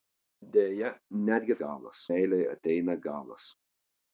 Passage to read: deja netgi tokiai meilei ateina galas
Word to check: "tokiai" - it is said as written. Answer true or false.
false